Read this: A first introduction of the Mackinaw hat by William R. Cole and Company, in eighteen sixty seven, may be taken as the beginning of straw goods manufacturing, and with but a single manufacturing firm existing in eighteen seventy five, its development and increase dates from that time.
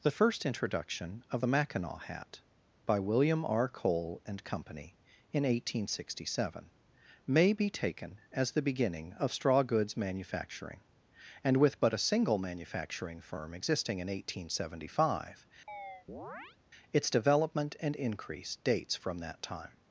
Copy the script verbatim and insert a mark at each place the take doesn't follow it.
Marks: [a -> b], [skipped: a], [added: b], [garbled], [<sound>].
[A -> The] first introduction of the Mackinaw hat by William R. Cole and Company, in eighteen sixty seven, may be taken as the beginning of straw goods manufacturing, and with but a single manufacturing firm existing in eighteen seventy five, [chirp] its development and increase dates from that time.